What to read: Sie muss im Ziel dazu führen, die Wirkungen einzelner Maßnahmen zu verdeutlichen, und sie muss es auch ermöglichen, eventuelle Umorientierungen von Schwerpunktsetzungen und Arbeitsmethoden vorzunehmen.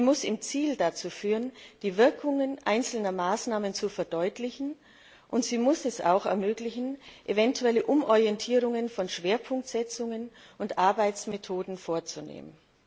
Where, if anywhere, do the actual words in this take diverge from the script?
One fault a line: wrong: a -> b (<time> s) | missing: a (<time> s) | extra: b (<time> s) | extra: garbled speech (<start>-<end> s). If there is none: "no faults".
no faults